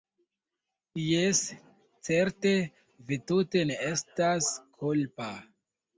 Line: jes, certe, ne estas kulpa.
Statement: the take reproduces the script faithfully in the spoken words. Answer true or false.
false